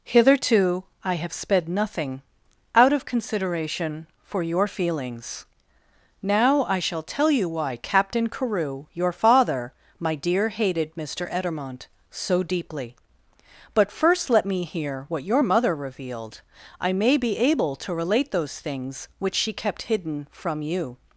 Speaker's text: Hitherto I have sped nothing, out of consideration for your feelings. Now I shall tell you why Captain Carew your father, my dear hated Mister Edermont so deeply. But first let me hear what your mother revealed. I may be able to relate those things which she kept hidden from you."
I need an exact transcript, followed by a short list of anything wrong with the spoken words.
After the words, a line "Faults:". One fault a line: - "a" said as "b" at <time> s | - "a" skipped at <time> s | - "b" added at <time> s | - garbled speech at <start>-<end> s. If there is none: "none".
Hitherto I have sped nothing, out of consideration for your feelings. Now I shall tell you why Captain Carew your father, my dear hated Mister Edermont so deeply. But first let me hear what your mother revealed. I may be able to relate those things which she kept hidden from you."
Faults:
none